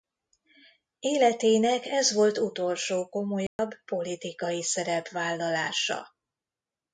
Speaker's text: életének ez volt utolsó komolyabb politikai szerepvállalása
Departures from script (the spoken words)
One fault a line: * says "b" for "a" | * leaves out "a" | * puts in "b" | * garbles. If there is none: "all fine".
all fine